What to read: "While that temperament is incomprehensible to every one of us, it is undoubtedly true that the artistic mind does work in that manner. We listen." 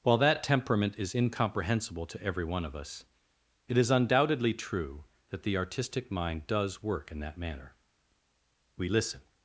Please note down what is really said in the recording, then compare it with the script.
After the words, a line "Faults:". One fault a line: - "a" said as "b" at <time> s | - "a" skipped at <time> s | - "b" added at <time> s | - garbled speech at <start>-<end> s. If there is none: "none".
"While that temperament is incomprehensible to every one of us, it is undoubtedly true that the artistic mind does work in that manner. We listen."
Faults:
none